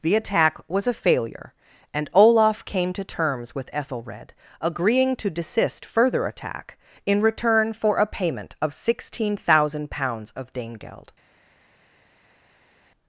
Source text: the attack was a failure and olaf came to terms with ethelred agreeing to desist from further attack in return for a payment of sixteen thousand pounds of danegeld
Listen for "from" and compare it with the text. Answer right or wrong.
wrong